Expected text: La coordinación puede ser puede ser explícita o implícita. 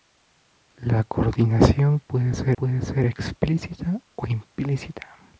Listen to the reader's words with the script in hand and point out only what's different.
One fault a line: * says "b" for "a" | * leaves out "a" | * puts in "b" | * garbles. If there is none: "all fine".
all fine